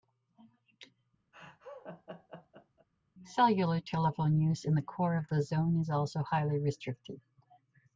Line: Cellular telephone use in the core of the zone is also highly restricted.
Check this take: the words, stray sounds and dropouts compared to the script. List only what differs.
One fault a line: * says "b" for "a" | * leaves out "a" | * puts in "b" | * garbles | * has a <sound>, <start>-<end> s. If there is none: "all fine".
* has a laugh, 1.3-2.9 s